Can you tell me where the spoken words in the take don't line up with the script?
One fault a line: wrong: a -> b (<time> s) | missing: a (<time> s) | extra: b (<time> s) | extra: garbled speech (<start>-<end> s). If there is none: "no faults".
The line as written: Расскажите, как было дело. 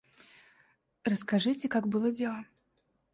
no faults